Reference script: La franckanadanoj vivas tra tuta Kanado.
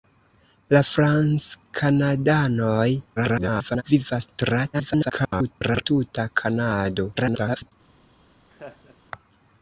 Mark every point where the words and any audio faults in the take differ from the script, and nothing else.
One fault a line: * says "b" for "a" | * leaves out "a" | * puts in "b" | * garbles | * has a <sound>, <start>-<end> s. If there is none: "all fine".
* garbles
* garbles
* garbles
* has a laugh, 8.5-9.0 s